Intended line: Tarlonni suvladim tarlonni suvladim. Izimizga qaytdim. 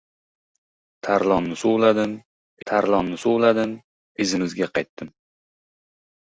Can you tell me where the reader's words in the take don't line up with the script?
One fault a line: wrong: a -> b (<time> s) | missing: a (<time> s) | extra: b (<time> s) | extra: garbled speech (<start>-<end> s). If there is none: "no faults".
no faults